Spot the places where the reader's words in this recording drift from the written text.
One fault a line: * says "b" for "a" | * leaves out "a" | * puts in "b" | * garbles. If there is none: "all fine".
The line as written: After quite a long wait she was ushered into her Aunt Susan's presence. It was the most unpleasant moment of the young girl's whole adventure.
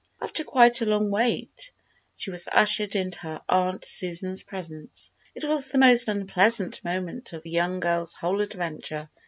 all fine